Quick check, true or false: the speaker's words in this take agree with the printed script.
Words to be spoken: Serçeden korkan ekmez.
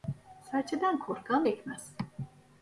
true